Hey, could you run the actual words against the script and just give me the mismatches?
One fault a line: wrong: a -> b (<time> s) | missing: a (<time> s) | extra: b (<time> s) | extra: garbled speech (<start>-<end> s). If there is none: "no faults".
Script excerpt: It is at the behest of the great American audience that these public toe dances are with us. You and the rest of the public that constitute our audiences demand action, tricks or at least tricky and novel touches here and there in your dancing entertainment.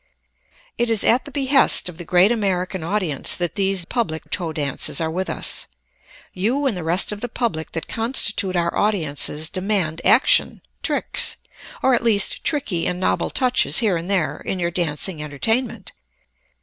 no faults